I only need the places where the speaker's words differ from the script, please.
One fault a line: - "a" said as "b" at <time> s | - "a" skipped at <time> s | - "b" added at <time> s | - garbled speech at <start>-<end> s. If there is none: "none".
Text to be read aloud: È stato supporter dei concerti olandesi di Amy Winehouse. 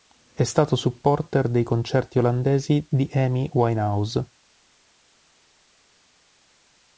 none